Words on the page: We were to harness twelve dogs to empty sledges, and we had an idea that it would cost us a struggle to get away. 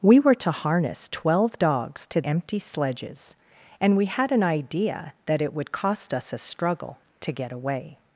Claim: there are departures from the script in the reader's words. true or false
false